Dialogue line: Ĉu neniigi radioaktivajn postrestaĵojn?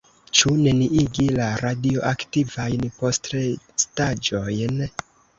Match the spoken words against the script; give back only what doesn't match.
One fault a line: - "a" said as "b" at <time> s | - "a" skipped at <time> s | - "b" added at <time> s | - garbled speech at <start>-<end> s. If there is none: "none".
- "la" added at 1.4 s